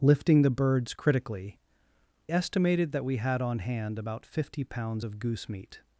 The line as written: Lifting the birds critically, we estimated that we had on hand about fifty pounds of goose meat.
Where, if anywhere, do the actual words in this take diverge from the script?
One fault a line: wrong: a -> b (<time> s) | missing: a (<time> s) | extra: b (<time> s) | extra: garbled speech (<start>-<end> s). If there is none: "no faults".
missing: we (1.6 s)